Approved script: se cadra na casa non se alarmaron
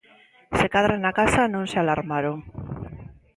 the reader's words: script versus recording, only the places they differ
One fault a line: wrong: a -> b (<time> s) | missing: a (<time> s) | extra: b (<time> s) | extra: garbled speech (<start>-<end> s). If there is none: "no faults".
no faults